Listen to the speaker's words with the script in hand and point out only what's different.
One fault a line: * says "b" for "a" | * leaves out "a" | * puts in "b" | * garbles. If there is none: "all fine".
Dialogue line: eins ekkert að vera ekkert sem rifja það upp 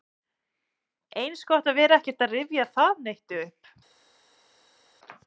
* says "gott" for "ekkert"
* says "að" for "sem"
* puts in "neitt"